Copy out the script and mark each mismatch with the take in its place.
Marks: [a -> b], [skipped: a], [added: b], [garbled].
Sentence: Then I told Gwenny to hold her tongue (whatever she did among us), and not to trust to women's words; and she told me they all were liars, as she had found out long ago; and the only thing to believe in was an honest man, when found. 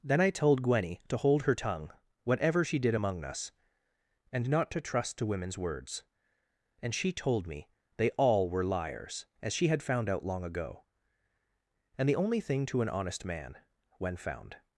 Then I told Gwenny to hold her tongue (whatever she did among us), and not to trust to women's words; and she told me they all were liars, as she had found out long ago; and the only thing to [skipped: believe in was] an honest man, when found.